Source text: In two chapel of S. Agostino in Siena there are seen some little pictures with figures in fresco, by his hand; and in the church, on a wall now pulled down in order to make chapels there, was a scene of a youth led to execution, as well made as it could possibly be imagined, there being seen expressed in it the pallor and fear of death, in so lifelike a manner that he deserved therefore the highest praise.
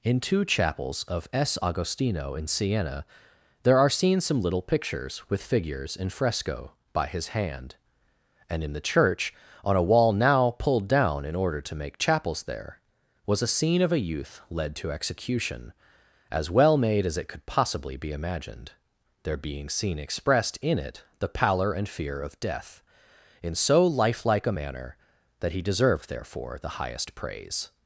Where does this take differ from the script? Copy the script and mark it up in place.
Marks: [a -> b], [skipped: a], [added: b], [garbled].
In two [chapel -> chapels] of S. Agostino in Siena there are seen some little pictures with figures in fresco, by his hand; and in the church, on a wall now pulled down in order to make chapels there, was a scene of a youth led to execution, as well made as it could possibly be imagined, there being seen expressed in it the pallor and fear of death, in so lifelike a manner that he deserved therefore the highest praise.